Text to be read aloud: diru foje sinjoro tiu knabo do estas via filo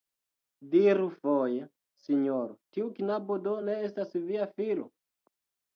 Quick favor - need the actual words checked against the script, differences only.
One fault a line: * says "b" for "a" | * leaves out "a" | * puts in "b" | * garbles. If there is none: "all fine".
* puts in "ne"